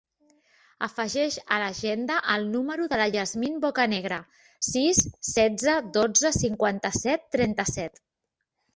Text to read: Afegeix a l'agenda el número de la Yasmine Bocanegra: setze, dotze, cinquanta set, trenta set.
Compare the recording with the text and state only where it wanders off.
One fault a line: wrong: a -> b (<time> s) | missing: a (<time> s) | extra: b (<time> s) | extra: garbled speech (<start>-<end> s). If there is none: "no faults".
extra: sis (4.7 s)